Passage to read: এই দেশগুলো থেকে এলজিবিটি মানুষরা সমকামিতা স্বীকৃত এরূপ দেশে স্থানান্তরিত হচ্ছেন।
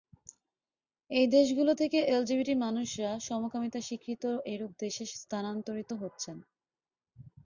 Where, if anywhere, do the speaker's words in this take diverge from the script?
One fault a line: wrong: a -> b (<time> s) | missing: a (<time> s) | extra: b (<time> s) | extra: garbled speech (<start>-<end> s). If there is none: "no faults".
no faults